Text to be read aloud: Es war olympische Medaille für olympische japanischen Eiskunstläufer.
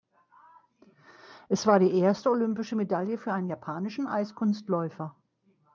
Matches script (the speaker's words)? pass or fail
fail